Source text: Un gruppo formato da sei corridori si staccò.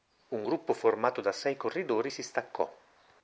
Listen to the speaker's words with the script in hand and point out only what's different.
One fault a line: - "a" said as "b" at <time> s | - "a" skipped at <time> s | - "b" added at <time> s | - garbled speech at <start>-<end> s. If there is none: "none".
none